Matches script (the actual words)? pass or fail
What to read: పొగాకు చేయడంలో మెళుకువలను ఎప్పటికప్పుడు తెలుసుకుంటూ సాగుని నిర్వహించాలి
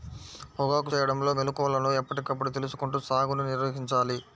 pass